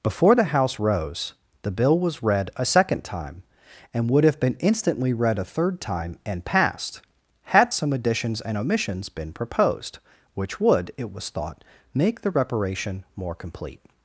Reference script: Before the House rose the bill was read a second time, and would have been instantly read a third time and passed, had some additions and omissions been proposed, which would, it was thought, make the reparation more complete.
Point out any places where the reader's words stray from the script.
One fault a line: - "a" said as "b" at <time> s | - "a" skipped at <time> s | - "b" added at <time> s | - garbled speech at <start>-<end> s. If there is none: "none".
none